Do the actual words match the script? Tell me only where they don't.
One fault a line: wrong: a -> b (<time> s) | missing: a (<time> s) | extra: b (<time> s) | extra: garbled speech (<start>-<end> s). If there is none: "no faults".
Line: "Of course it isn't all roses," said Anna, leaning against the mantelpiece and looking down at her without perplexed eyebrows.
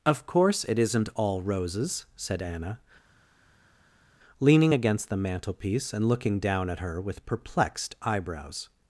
wrong: without -> with (7.0 s)